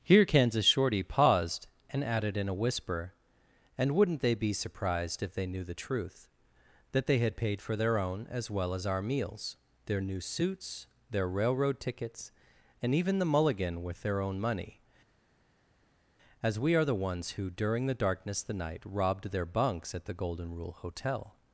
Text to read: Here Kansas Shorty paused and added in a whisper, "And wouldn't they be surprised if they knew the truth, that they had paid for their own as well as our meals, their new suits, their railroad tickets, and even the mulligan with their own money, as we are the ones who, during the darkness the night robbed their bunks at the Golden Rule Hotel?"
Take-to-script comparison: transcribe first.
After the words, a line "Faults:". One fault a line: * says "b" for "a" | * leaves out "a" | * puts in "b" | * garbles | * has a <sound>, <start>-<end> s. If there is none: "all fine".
Here Kansas Shorty paused and added in a whisper, "And wouldn't they be surprised if they knew the truth, that they had paid for their own as well as our meals, their new suits, their railroad tickets, and even the mulligan with their own money, as we are the ones who, during the darkness the night robbed their bunks at the Golden Rule Hotel?"
Faults:
all fine